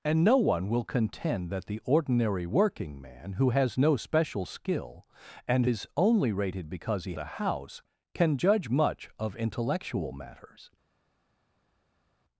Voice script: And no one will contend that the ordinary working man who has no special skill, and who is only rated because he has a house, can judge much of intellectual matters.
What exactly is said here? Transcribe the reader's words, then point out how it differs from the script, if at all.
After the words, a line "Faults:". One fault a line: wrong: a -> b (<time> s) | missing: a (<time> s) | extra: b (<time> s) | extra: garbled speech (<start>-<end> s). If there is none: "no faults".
And no one will contend that the ordinary working man who has no special skill, and is only rated because he a house, can judge much of intellectual matters.
Faults:
missing: who (5.7 s)
missing: has (7.1 s)